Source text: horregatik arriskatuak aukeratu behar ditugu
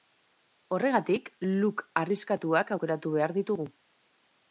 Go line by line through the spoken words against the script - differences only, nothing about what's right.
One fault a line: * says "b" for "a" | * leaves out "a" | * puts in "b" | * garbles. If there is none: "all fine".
* puts in "look"